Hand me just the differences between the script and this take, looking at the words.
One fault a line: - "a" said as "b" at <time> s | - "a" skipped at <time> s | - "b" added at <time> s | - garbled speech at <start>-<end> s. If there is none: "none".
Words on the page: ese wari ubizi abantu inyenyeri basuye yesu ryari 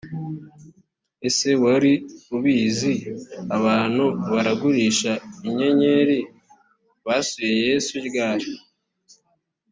- "baragurisha" added at 4.3 s